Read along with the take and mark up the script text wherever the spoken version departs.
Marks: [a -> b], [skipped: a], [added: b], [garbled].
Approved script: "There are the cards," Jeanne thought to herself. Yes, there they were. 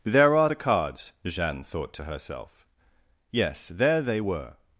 "There are the cards," Jeanne thought to herself. Yes, there they were.